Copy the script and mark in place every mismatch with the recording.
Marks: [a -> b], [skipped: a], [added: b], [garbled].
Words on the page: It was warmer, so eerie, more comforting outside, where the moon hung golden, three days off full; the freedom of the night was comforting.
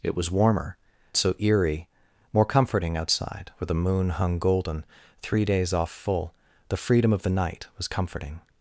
It was warmer, so eerie, more comforting outside, where the moon hung golden, three days off full; the freedom of the night was comforting.